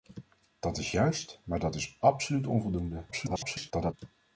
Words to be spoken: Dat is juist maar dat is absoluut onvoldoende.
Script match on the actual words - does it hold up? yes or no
no